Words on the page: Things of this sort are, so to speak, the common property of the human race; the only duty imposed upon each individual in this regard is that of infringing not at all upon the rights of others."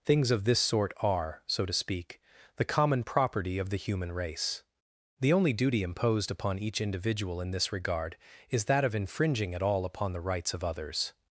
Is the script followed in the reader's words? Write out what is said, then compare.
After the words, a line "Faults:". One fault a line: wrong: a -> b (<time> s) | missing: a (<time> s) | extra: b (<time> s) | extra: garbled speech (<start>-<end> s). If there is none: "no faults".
Things of this sort are, so to speak, the common property of the human race; the only duty imposed upon each individual in this regard is that of infringing at all upon the rights of others."
Faults:
missing: not (9.5 s)